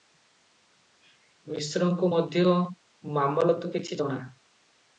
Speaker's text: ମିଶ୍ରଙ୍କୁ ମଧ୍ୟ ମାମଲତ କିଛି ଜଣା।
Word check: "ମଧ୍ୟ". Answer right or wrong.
right